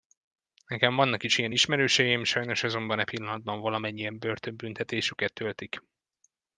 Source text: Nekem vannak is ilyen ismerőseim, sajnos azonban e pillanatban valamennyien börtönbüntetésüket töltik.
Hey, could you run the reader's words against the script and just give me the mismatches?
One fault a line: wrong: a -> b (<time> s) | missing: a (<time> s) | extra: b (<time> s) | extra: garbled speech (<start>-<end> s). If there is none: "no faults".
no faults